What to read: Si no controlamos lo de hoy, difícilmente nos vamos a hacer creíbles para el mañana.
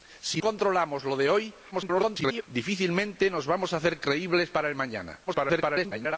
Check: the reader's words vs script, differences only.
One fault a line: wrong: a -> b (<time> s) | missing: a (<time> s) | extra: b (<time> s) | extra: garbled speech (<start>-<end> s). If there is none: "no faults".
missing: no (0.4 s)
extra: garbled speech (1.7-2.4 s)
extra: garbled speech (5.3-6.2 s)